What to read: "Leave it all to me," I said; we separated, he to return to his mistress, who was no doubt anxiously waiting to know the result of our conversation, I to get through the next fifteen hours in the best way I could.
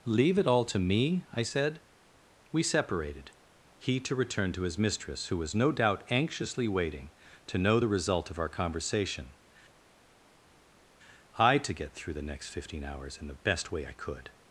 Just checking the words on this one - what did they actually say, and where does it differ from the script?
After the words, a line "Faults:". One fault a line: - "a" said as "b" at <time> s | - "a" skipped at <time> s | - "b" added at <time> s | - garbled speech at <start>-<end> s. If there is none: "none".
"Leave it all to me," I said; we separated, he to return to his mistress, who was no doubt anxiously waiting to know the result of our conversation, I to get through the next fifteen hours in the best way I could.
Faults:
none